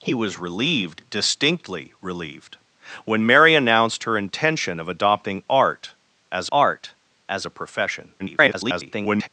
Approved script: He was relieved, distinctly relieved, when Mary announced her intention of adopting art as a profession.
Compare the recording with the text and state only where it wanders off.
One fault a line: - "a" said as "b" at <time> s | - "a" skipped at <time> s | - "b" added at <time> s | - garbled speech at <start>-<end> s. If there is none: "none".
- "art as" added at 6.5 s
- garbled speech at 8.2-9.3 s